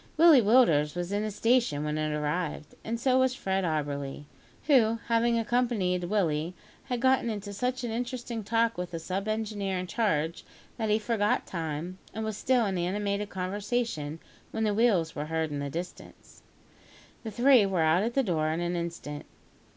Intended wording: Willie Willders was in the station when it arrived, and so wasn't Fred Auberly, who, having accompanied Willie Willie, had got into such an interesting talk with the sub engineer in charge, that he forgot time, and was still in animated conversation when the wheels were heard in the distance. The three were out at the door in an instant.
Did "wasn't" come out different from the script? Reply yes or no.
yes